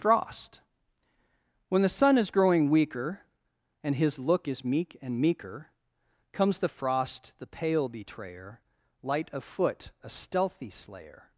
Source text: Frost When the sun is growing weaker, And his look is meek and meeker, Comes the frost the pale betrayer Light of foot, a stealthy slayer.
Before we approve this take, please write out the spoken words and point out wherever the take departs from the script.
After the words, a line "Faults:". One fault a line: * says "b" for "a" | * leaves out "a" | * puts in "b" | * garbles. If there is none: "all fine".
Frost When the sun is growing weaker, And his look is meek and meeker, Comes the frost the pale betrayer Light of foot, a stealthy slayer.
Faults:
all fine